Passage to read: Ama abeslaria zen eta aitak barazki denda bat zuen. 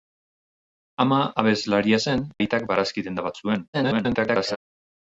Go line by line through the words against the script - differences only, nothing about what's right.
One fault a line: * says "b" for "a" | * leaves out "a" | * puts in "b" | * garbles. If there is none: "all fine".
* leaves out "eta"
* garbles